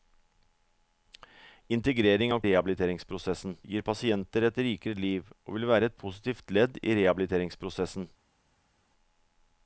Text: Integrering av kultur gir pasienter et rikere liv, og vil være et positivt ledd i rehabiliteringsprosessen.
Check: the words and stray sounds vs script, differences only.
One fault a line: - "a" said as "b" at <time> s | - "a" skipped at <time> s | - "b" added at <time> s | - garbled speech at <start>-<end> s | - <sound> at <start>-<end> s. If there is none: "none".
- "kultur" said as "rehabiliteringsprosessen" at 2.5 s